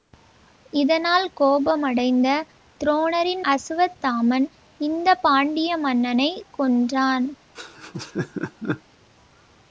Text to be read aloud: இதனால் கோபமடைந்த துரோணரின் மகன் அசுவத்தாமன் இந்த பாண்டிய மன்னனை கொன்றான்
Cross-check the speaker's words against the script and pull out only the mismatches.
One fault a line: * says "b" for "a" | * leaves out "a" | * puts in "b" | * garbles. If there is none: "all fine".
* leaves out "மகன்"